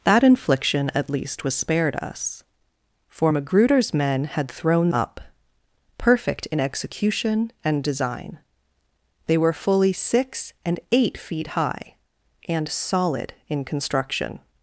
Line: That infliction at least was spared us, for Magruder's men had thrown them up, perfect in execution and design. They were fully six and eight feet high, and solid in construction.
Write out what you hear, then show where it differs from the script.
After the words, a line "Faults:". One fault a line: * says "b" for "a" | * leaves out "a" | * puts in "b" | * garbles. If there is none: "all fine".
That infliction at least was spared us, for Magruder's men had thrown up, perfect in execution and design. They were fully six and eight feet high, and solid in construction.
Faults:
* leaves out "them"